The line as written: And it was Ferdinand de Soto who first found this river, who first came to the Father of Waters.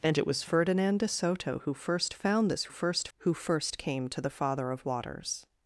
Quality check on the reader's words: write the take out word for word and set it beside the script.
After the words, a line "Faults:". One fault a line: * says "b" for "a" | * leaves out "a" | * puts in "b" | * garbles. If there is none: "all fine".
And it was Ferdinand de Soto who first found this first, who first came to the Father of Waters.
Faults:
* says "first" for "river"